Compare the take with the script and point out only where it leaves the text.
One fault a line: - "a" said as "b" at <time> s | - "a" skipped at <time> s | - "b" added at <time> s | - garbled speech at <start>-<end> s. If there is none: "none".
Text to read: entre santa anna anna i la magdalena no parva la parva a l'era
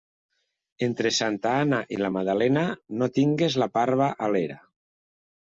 - "anna" skipped at 1.8 s
- "parva" said as "tingues" at 3.2 s